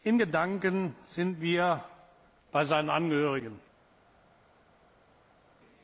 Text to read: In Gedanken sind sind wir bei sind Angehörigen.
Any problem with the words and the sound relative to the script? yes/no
yes